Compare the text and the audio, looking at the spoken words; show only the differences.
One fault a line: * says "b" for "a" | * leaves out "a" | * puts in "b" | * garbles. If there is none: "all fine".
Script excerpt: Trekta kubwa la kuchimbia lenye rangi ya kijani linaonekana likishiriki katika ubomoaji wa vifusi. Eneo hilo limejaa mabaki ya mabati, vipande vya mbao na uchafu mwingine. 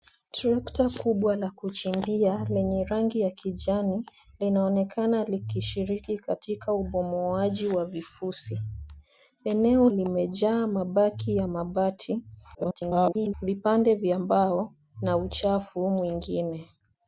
* leaves out "hilo"
* garbles